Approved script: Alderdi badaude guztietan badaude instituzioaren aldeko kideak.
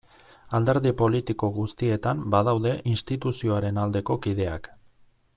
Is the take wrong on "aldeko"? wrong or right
right